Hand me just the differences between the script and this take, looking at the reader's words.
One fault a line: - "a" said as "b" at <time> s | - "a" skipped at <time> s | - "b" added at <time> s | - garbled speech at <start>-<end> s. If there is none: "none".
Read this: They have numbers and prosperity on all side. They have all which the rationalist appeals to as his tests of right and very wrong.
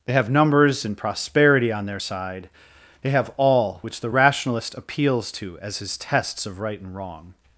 - "all" said as "their" at 1.9 s
- "very" skipped at 6.9 s